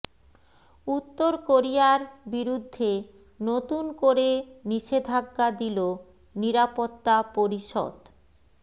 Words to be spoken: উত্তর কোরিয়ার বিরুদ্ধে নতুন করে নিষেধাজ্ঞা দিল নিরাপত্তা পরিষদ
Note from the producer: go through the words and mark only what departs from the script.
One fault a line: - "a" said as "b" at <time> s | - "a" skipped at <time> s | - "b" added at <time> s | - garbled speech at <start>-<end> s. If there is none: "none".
none